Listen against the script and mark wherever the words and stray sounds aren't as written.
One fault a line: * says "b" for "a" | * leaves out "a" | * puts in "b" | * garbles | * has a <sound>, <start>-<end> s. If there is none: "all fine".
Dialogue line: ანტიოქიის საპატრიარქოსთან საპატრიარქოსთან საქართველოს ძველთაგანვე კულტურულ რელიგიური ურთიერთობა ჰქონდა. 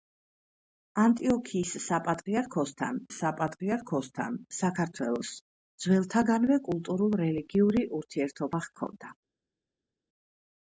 all fine